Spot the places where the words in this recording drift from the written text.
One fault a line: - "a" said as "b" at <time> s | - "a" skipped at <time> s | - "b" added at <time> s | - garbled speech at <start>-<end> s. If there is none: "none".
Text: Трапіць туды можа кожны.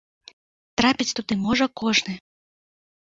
none